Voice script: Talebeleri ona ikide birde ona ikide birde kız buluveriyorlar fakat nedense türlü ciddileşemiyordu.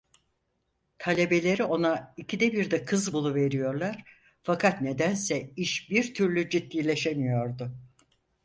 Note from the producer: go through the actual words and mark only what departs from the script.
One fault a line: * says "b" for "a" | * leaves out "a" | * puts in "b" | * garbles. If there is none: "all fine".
* leaves out "ona ikide birde"
* puts in "iş bir"